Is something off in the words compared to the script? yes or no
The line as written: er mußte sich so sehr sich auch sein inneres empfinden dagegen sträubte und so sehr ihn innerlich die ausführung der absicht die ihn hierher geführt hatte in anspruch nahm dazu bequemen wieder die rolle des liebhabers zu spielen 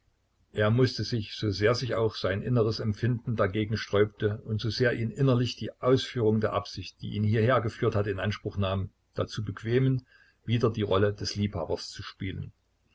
no